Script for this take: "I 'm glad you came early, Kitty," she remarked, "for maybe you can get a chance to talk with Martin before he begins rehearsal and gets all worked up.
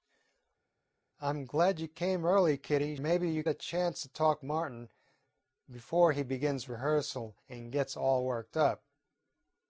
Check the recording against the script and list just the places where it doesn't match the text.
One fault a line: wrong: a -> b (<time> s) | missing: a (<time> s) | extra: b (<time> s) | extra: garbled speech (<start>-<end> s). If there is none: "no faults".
missing: she remarked for (3.0 s)
missing: can get (3.4 s)
missing: with (4.4 s)